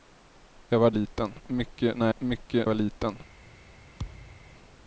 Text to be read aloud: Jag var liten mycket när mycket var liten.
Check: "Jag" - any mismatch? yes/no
no